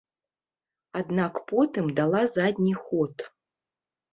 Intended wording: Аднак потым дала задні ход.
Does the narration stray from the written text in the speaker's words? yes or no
no